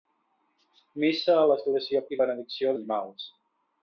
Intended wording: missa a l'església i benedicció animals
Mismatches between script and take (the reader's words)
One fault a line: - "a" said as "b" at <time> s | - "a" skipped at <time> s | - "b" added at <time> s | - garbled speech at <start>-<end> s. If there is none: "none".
none